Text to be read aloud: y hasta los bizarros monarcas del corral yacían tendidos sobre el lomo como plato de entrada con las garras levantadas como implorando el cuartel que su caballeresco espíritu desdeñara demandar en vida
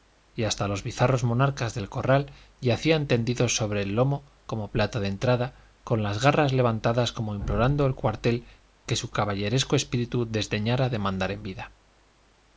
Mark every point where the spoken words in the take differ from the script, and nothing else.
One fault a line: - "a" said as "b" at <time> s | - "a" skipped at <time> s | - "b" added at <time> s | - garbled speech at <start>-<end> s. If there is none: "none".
none